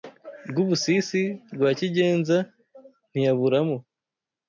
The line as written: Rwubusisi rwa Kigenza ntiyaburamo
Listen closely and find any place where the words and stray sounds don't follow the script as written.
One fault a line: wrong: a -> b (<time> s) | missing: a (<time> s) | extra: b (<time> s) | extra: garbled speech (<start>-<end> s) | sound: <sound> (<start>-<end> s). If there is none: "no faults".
no faults